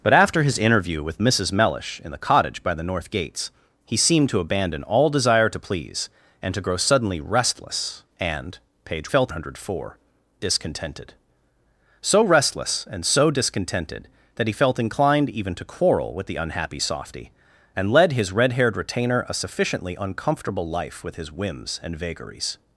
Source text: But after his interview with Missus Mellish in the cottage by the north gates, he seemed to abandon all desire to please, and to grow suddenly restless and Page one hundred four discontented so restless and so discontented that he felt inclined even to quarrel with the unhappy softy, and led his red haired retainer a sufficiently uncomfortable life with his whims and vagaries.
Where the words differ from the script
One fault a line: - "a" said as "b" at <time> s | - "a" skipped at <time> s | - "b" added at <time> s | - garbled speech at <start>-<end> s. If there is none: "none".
- "one" said as "felt" at 9.1 s